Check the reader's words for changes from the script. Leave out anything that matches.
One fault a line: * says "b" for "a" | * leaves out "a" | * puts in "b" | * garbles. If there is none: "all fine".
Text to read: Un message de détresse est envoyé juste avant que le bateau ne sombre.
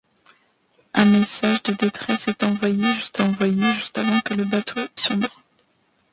* puts in "envoyé juste"
* leaves out "ne"